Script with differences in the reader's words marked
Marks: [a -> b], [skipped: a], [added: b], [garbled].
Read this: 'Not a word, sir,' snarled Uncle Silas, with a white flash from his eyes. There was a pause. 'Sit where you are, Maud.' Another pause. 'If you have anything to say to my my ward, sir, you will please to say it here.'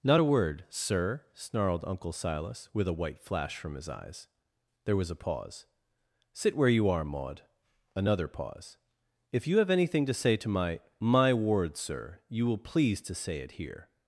'Not a word, sir,' snarled Uncle Silas, with a white flash from his eyes. There was a pause. 'Sit where you are, Maud.' Another pause. 'If you have anything to say to my my ward, sir, you will please to say it here.'